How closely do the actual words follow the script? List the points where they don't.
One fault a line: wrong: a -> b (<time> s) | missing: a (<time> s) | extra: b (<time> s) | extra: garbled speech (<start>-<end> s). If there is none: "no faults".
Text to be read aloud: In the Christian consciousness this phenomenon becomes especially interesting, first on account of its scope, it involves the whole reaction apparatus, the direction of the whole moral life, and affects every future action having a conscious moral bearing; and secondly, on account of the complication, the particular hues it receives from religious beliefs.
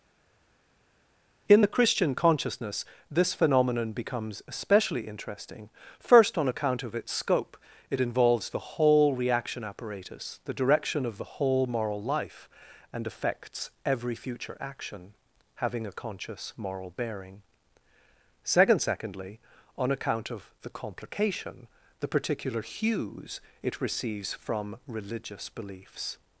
wrong: and -> second (18.4 s)